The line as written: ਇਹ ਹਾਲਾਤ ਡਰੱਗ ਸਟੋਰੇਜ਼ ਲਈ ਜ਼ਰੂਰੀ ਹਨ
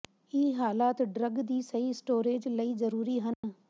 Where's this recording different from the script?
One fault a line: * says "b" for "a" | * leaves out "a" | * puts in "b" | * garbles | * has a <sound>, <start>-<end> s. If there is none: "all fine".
* puts in "ਦੀ ਸਹੀ"
* has a dropout, 3.3-3.4 s